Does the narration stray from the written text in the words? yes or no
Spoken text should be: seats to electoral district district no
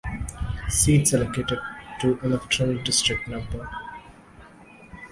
yes